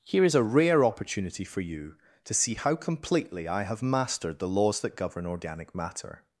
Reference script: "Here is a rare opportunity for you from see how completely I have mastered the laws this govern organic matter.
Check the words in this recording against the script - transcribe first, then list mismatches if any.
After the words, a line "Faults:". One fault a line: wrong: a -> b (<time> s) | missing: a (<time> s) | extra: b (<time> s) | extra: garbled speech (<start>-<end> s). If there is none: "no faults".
"Here is a rare opportunity for you to see how completely I have mastered the laws that govern organic matter.
Faults:
wrong: from -> to (2.2 s)
wrong: this -> that (4.8 s)